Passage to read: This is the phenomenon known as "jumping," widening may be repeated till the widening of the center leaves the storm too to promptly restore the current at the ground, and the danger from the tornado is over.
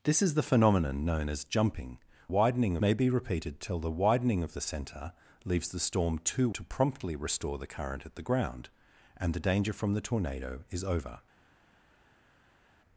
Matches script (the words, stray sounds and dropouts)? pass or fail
pass